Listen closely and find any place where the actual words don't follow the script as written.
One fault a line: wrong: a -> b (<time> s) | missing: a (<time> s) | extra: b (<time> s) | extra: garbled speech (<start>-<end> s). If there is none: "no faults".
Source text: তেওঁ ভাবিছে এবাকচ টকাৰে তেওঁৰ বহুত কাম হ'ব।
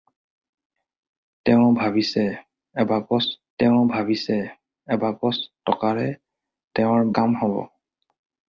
extra: তেওঁ ভাবিছে এবাকচ (3.6 s)
missing: বহুত (7.1 s)